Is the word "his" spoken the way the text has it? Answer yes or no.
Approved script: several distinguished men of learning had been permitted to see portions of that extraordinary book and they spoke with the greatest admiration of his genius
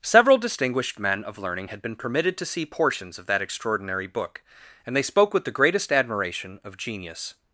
no